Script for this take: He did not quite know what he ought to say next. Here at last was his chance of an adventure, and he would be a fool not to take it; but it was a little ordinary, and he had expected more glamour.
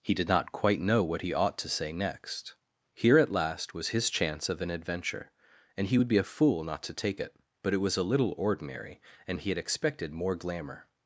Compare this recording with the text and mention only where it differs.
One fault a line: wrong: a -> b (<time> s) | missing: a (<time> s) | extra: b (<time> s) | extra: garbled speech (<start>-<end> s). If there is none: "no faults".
no faults